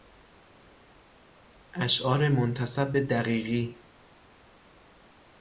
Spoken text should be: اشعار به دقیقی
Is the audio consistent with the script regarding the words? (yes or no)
no